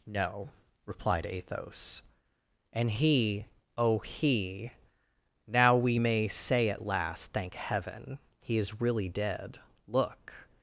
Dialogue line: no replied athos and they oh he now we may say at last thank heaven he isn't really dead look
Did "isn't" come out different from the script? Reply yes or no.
yes